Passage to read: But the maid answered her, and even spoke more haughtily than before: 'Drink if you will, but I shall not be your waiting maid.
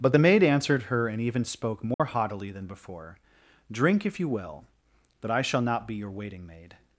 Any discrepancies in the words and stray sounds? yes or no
yes